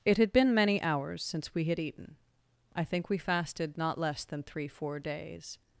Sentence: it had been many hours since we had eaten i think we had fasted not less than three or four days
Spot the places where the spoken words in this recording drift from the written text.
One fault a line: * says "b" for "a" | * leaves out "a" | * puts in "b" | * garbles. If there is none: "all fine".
* leaves out "had"
* leaves out "or"